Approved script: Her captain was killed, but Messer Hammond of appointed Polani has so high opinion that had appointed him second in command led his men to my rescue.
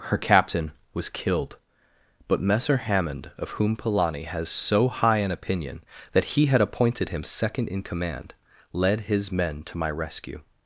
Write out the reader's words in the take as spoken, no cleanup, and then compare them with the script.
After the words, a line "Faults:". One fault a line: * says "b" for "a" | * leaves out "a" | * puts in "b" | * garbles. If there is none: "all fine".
Her captain was killed, but Messer Hammond of whom Polani has so high an opinion that he had appointed him second in command led his men to my rescue.
Faults:
* says "whom" for "appointed"
* puts in "an"
* puts in "he"